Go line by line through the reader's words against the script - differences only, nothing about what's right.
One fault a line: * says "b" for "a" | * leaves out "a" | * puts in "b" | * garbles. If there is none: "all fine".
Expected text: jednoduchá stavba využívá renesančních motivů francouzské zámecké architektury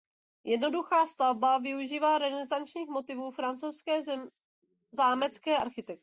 all fine